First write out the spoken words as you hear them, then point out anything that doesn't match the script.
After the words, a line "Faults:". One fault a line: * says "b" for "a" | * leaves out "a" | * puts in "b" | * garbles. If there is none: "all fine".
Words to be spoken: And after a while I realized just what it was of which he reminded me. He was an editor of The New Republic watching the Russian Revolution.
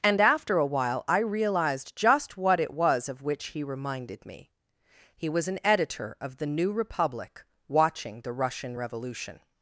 And after a while I realized just what it was of which he reminded me. He was an editor of The New Republic watching the Russian Revolution.
Faults:
all fine